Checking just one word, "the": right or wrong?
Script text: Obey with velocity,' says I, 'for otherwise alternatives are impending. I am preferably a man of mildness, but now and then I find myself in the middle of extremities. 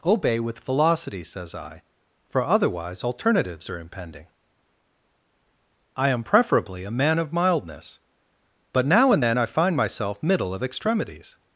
wrong